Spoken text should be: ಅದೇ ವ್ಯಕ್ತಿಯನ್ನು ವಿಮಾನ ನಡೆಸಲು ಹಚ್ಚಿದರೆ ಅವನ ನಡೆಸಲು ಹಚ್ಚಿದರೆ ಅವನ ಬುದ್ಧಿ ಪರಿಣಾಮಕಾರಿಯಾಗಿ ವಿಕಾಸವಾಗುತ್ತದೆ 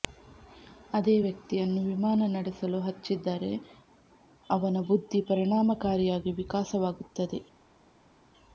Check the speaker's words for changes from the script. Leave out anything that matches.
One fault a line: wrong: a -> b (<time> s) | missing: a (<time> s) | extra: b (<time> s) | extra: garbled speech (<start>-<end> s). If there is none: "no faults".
missing: ನಡೆಸಲು ಹಚ್ಚಿದರೆ ಅವನ (4.8 s)